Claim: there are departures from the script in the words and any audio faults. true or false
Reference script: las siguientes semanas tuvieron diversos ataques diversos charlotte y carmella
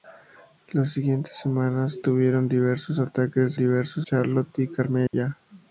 true